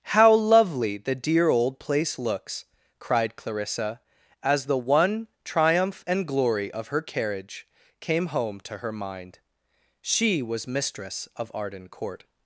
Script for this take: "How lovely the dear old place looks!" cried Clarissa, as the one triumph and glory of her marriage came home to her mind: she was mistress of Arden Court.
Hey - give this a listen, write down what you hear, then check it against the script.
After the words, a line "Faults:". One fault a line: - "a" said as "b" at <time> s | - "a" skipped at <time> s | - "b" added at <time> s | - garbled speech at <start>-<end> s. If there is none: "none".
"How lovely the dear old place looks!" cried Clarissa, as the one triumph and glory of her carriage came home to her mind: she was mistress of Arden Court.
Faults:
- "marriage" said as "carriage" at 7.0 s